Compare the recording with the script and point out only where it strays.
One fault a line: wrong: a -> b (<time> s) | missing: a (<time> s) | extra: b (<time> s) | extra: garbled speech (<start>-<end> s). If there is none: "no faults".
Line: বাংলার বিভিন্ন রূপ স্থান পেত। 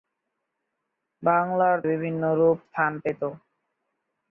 no faults